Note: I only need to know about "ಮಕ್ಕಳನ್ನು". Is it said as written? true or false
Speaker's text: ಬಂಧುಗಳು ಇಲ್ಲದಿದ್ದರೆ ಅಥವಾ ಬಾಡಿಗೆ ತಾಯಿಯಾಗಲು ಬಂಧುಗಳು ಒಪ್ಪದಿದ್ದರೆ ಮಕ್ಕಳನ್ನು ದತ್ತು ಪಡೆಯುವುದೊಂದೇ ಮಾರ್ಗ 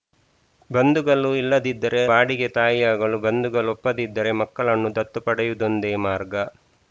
true